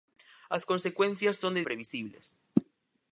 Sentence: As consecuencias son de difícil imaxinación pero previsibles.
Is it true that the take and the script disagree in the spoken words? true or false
true